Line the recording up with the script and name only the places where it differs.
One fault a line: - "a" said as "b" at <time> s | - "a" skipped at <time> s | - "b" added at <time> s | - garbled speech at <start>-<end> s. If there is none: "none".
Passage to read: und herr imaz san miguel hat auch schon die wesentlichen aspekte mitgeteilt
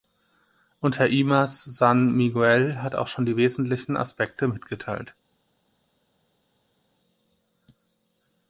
none